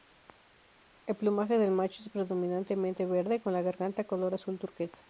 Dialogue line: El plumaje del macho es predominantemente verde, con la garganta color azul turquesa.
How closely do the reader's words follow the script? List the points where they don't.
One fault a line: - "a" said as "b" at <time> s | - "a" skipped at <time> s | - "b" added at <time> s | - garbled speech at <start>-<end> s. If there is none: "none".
none